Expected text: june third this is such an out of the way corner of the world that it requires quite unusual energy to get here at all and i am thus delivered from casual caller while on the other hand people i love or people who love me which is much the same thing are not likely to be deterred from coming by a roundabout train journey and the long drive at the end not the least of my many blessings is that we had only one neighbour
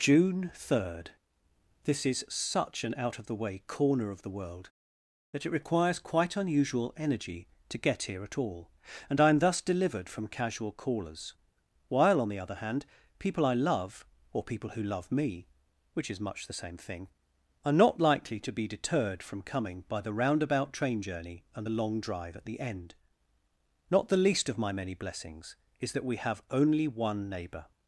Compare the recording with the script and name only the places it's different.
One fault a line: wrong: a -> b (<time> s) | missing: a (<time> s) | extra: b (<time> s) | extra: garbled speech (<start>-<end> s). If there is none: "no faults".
wrong: caller -> callers (10.7 s)
wrong: a -> the (20.0 s)
wrong: had -> have (26.2 s)